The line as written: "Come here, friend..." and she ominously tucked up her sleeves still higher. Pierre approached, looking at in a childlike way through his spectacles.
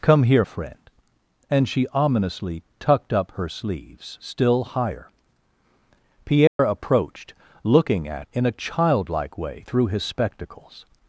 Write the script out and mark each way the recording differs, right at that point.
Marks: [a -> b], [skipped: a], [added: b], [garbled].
"Come here, friend..." and she ominously tucked up her sleeves still higher. Pierre approached, looking at in a childlike way through his spectacles.